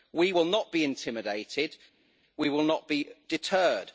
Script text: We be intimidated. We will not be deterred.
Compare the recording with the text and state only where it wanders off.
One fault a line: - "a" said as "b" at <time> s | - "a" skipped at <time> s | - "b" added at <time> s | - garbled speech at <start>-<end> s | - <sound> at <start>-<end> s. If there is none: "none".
- "will not" added at 0.3 s